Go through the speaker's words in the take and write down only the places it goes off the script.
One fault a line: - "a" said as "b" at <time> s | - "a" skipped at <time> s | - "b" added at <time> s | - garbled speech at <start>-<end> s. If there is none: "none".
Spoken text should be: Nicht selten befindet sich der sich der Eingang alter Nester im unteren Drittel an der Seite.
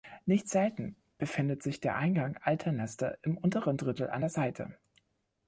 - "sich der" skipped at 2.0 s